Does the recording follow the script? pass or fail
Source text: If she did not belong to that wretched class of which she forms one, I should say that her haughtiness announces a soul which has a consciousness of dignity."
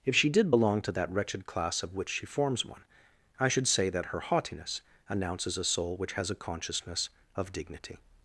fail